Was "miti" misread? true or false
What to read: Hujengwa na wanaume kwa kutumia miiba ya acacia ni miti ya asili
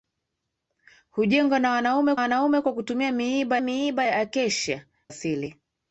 true